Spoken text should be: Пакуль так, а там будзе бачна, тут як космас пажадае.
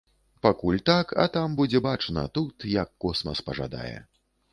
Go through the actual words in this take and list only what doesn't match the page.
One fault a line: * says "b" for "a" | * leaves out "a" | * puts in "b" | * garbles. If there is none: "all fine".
all fine